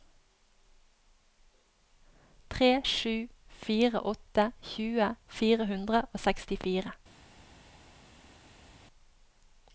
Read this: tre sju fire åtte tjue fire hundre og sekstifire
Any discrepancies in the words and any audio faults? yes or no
no